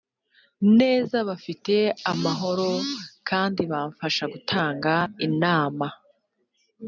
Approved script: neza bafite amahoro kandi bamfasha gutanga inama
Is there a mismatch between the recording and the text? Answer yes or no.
no